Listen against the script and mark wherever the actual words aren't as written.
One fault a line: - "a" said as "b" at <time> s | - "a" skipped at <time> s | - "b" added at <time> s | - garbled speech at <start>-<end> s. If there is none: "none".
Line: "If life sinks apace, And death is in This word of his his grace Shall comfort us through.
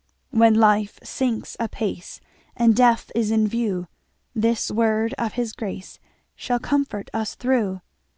- "If" said as "When" at 0.3 s
- "view" added at 3.5 s
- "his" skipped at 5.5 s